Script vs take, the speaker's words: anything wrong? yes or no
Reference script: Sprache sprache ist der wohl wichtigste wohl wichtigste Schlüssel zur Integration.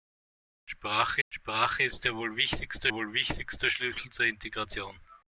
no